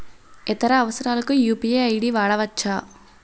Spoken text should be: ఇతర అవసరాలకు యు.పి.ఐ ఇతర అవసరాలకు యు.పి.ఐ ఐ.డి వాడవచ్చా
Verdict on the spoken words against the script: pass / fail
fail